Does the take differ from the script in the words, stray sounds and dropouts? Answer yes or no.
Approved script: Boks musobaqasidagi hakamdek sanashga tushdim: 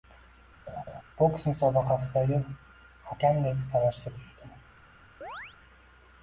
yes